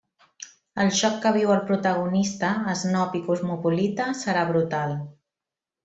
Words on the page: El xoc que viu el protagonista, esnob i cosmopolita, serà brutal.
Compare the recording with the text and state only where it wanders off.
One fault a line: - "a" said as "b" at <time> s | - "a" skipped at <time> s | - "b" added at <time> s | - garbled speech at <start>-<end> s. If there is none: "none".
none